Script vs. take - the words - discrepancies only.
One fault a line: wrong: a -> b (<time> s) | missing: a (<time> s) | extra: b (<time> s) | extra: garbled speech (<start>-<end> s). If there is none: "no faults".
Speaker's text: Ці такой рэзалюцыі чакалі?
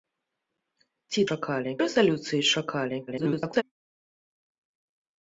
wrong: такой -> чакалі (1.3 s)
extra: garbled speech (3.1-3.6 s)